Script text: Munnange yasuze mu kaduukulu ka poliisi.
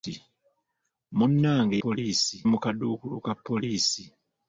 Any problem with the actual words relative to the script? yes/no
yes